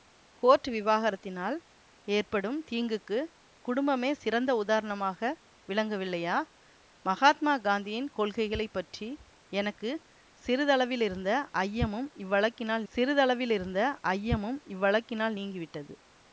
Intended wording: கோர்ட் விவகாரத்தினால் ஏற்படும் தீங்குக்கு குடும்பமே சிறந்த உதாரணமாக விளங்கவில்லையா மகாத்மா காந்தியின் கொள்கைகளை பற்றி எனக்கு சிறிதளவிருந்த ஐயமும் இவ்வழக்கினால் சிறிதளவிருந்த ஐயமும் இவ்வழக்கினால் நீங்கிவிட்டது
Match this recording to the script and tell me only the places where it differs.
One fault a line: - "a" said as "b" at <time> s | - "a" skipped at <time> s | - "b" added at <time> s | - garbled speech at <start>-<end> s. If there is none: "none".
none